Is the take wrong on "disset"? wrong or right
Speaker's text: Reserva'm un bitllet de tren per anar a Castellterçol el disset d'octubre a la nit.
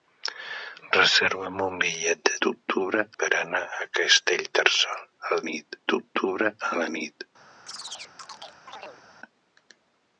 wrong